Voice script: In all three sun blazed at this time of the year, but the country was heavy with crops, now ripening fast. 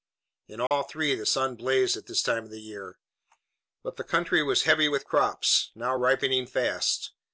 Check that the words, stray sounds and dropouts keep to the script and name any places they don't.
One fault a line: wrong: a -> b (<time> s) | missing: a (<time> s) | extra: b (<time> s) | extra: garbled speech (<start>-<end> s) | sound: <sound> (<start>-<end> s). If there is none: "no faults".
sound: dropout (0.7-0.7 s)
extra: the (1.1 s)